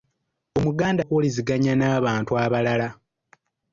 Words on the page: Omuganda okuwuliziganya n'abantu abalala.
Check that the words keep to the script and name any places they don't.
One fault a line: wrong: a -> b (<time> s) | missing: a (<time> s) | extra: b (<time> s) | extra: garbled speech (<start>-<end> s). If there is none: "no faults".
no faults